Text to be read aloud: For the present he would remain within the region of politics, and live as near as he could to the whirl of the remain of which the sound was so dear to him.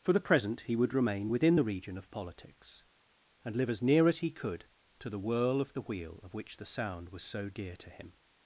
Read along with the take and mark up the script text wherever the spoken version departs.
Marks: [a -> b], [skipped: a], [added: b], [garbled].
For the present he would remain within the region of politics, and live as near as he could to the whirl of the [remain -> wheel] of which the sound was so dear to him.